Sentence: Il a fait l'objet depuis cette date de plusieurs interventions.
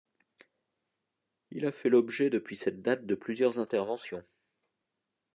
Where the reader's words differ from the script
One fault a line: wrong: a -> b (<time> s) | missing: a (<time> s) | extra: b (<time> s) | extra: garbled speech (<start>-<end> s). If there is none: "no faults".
no faults